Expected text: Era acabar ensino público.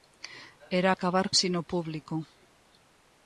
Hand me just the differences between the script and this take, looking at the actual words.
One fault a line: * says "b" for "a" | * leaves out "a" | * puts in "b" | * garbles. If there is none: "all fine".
all fine